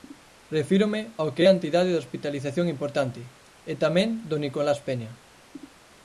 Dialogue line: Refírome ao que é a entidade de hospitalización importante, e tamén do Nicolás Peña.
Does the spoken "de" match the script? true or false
true